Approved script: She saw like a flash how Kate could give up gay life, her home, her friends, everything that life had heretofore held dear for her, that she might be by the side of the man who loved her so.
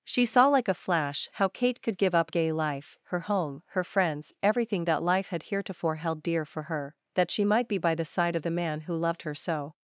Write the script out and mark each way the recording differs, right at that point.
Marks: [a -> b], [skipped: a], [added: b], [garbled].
She saw like a flash how Kate could give up gay life, her home, her friends, everything that life had heretofore held dear for her, that she might be by the side of the man who loved her so.